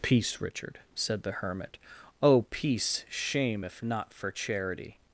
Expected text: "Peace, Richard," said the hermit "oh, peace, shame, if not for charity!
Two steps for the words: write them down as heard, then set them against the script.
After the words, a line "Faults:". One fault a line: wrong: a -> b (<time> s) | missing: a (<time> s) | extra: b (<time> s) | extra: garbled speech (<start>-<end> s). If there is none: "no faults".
"Peace, Richard," said the hermit "oh, peace, shame, if not for charity!
Faults:
no faults